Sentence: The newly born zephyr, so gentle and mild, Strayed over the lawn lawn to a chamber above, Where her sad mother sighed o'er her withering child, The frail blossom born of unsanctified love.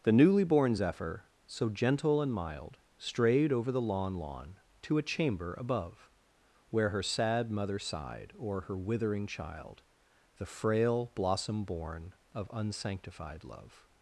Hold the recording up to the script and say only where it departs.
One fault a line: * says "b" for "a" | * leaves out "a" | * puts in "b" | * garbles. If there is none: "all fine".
all fine